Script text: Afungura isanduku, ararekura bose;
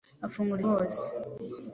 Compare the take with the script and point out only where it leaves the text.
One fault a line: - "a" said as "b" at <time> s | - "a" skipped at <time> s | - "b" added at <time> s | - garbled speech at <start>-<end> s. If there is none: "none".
- "isanduku ararekura" skipped at 0.6 s